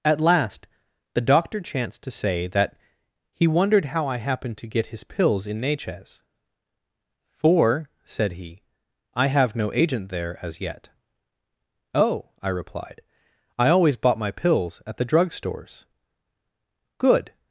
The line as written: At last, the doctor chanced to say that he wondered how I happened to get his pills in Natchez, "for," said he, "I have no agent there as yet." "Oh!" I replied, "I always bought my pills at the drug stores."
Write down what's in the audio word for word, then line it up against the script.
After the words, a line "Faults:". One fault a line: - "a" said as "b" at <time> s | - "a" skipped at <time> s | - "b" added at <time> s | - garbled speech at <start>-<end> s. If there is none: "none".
At last, the doctor chanced to say that he wondered how I happened to get his pills in Natchez, "for," said he, "I have no agent there as yet." "Oh!" I replied, "I always bought my pills at the drug stores." "Good
Faults:
- "Good" added at 17.0 s